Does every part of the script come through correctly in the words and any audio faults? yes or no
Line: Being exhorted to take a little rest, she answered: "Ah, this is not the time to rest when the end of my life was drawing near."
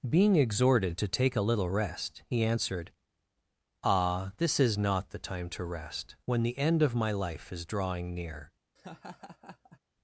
no